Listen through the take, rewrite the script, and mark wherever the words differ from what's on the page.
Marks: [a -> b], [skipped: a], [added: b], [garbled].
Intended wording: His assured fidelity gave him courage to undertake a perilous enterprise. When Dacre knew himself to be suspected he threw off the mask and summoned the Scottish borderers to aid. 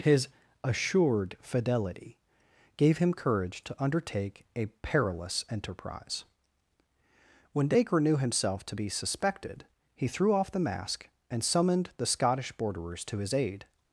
His assured fidelity gave him courage to undertake a perilous enterprise. When Dacre knew himself to be suspected he threw off the mask and summoned the Scottish borderers to [added: his] aid.